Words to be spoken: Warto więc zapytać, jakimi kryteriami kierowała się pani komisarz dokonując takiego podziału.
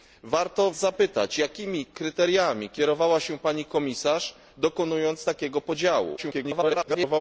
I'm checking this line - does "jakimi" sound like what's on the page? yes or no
yes